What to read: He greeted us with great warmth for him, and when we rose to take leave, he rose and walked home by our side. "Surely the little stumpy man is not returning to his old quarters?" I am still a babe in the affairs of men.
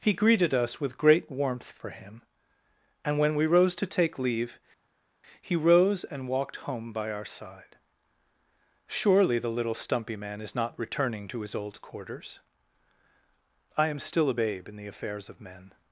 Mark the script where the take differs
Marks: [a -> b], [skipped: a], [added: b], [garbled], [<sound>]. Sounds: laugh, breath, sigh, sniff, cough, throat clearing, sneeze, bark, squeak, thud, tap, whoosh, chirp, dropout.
He greeted us with great warmth for him, and when we rose to take leave, he rose and walked home by our side. "Surely the little stumpy man is not returning to his old quarters?" I am still a babe in the affairs of men.